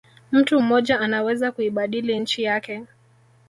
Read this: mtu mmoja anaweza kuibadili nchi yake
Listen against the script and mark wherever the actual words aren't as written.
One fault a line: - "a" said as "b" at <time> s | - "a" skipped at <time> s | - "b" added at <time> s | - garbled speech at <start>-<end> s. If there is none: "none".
none